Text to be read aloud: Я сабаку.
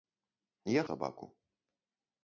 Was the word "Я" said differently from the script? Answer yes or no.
no